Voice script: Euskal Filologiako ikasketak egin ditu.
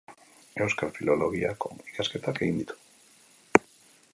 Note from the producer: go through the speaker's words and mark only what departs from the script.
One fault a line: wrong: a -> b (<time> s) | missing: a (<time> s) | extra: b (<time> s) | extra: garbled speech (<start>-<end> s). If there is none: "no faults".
no faults